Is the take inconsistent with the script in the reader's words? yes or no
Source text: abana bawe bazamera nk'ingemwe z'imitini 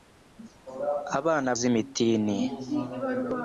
yes